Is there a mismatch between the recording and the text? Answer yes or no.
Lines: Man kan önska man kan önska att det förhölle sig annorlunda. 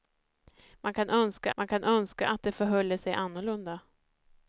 no